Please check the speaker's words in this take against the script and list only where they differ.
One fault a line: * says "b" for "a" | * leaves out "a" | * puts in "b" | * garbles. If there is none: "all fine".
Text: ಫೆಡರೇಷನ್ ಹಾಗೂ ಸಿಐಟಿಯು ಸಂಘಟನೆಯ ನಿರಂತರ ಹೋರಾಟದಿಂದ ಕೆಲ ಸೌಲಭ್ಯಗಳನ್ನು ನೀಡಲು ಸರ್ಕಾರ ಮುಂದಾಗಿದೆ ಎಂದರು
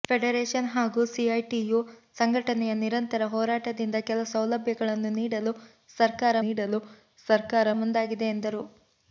* puts in "ನೀಡಲು ಸರ್ಕಾರ"